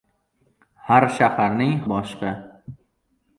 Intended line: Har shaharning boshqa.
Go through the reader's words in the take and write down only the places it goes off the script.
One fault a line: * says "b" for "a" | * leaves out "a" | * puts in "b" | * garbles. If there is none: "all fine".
all fine